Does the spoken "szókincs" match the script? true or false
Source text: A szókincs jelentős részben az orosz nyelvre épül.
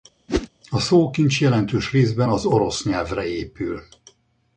true